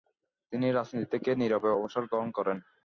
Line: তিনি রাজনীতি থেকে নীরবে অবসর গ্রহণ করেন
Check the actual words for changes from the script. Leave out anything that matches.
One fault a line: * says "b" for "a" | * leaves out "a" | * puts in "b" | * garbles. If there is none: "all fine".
all fine